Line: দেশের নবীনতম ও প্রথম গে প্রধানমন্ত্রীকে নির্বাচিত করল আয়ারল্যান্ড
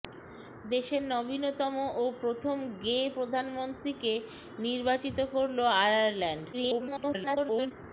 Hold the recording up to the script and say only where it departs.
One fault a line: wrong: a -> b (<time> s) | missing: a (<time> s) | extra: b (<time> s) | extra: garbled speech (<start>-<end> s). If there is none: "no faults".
extra: garbled speech (6.5-7.7 s)